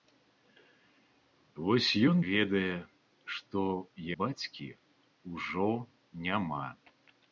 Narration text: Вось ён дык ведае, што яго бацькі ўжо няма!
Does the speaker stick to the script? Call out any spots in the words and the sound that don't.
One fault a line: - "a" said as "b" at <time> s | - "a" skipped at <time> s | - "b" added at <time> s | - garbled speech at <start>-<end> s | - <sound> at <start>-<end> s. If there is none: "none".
- "дык" skipped at 2.2 s
- "яго" skipped at 3.6 s